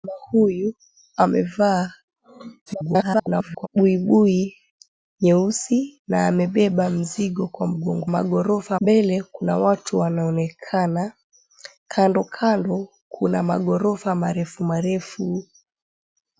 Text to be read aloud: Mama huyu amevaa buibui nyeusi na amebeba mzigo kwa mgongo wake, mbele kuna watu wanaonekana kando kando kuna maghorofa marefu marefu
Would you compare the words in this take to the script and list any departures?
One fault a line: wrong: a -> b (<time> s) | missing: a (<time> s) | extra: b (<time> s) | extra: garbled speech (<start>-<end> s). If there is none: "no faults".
extra: garbled speech (2.7-3.7 s)
wrong: wake -> maghorofa (8.1 s)